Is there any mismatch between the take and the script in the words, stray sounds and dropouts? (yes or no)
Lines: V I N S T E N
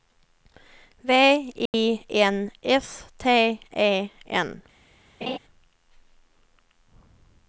yes